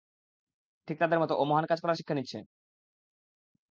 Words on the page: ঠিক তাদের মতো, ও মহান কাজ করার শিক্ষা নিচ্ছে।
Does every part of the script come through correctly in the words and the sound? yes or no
yes